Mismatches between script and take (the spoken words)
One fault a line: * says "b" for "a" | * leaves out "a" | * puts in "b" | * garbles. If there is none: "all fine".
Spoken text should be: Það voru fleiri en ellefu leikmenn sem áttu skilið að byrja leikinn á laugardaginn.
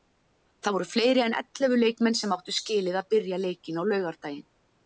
all fine